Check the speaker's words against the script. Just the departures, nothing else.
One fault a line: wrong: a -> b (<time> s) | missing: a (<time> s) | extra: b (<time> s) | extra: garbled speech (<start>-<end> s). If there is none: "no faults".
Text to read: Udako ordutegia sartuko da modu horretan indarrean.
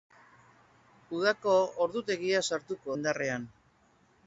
missing: da modu horretan (3.0 s)